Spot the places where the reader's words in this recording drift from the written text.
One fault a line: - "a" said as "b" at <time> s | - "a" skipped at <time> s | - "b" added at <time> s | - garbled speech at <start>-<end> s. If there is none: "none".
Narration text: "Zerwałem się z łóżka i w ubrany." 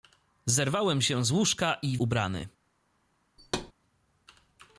none